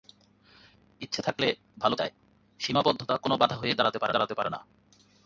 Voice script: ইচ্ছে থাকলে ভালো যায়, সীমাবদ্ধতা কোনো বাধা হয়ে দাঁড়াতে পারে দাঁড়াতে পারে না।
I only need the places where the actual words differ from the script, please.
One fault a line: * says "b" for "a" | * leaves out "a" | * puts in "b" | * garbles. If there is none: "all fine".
all fine